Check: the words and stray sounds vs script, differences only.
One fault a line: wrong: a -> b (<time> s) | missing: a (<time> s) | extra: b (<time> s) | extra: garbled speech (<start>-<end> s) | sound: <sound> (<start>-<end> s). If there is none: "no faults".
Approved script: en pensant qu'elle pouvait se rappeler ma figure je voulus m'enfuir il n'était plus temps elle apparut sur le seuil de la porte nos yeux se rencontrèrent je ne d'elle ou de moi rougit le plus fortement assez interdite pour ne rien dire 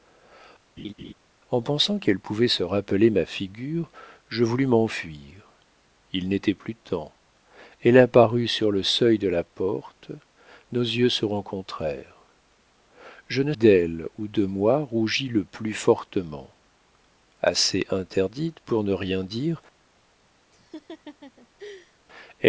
sound: laugh (0.8-1.1 s)
sound: laugh (20.5-22.0 s)